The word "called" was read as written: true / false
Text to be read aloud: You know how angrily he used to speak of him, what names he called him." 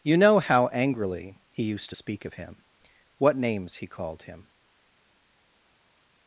true